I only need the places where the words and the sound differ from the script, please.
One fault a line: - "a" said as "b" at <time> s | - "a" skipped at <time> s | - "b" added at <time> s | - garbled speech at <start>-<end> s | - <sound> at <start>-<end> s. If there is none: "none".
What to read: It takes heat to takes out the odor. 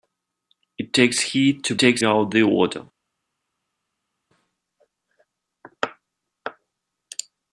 none